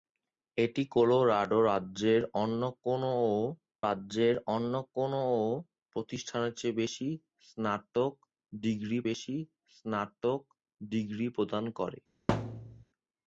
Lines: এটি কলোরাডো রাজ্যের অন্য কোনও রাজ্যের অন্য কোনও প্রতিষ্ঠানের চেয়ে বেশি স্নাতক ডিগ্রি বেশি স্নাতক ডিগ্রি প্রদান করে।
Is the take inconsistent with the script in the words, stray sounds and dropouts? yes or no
yes